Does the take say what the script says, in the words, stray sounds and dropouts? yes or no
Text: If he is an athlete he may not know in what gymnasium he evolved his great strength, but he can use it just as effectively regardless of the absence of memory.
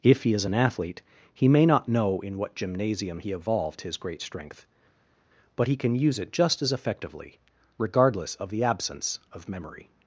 yes